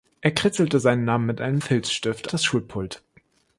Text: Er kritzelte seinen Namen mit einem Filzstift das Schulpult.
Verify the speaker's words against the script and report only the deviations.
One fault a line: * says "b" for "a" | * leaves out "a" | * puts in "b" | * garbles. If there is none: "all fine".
all fine